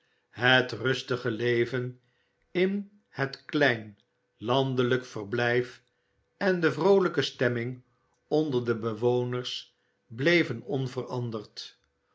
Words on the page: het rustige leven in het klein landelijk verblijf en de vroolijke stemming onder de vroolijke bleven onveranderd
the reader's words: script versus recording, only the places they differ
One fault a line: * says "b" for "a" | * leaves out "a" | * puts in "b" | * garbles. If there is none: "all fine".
* says "bewoners" for "vroolijke"